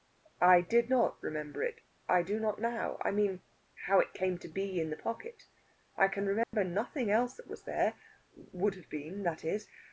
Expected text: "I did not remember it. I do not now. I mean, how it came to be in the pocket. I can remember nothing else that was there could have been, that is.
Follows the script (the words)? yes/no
no